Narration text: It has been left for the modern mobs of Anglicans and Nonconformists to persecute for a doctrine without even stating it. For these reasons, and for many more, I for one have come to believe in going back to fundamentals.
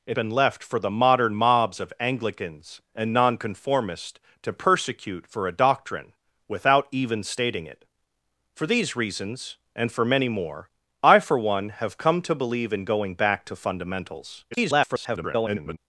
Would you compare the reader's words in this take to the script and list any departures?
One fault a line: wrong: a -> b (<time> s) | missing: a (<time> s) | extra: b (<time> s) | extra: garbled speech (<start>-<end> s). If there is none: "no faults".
missing: has (0.2 s)
extra: garbled speech (14.5-15.8 s)